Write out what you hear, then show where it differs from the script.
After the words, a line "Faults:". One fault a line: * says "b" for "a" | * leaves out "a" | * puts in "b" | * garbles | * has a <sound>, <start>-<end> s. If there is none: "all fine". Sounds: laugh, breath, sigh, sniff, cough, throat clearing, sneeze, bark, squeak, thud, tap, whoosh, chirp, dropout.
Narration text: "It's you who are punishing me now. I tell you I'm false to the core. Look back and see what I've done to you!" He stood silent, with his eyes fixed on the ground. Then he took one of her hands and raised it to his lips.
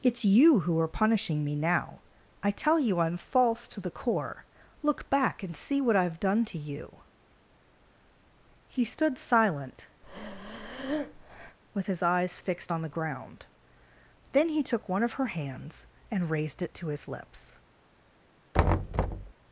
"It's you who are punishing me now. I tell you I'm false to the core. Look back and see what I've done to you!" He stood silent, with his eyes fixed on the ground. Then he took one of her hands and raised it to his lips.
Faults:
* has a breath, 10.0-11.6 s
* has a thud, 18.5-19.3 s